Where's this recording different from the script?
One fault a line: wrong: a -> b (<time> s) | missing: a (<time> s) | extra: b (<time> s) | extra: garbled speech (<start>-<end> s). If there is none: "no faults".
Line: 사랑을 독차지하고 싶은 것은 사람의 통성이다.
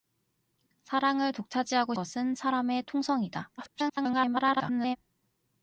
missing: 싶은 (1.9 s)
extra: garbled speech (3.6-5.0 s)